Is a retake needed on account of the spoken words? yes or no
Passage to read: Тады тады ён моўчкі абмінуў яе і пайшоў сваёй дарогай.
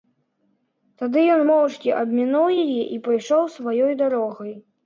yes